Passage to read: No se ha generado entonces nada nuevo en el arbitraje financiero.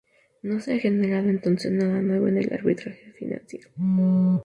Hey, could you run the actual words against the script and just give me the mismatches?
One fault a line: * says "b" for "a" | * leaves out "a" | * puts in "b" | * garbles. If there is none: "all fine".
all fine